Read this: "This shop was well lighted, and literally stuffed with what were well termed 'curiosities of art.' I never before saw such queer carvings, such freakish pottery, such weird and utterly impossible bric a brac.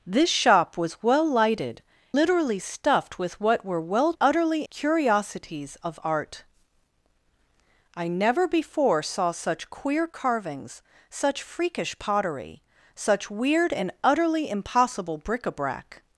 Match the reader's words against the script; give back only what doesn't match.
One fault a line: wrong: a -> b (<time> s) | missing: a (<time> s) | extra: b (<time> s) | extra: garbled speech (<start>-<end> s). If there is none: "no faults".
missing: and (1.8 s)
wrong: termed -> utterly (4.2 s)